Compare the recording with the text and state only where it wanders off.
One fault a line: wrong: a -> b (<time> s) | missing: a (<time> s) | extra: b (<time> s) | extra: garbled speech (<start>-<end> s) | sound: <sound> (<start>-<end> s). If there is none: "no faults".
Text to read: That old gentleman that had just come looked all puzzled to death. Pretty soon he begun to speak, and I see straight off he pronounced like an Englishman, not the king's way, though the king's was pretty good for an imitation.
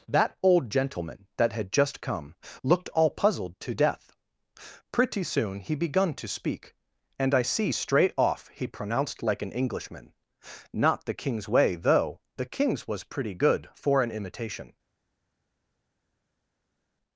no faults